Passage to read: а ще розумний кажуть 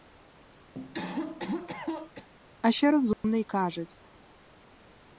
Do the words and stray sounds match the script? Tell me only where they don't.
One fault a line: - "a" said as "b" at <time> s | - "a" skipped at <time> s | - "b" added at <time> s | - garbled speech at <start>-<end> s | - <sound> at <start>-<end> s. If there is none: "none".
- cough at 0.7-2.3 s
- dropout at 3.1-3.2 s